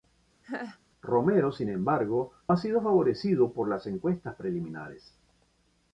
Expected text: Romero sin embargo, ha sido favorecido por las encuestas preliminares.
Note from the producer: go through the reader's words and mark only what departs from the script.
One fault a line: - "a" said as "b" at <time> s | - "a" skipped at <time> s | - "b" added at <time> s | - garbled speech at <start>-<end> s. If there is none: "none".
none